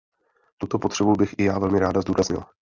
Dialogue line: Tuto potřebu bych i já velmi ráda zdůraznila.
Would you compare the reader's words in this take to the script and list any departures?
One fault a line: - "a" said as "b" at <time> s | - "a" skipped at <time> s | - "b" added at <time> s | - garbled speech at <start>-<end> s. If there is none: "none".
none